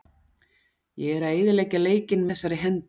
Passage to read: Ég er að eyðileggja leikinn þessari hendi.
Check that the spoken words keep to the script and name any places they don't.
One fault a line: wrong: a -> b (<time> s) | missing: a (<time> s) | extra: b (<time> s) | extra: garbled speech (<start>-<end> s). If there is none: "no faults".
no faults